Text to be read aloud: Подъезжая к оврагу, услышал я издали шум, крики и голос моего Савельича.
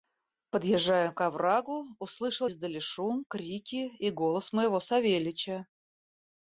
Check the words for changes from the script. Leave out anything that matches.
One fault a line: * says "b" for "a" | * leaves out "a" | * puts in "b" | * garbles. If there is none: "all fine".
* leaves out "я"